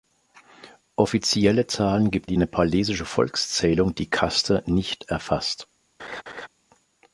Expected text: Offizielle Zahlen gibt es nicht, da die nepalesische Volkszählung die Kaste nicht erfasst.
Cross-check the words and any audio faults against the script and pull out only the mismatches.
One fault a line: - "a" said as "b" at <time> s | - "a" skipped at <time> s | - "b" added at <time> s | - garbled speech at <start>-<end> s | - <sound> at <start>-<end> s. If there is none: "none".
- "es nicht da" skipped at 2.3 s
- laugh at 6.0-6.5 s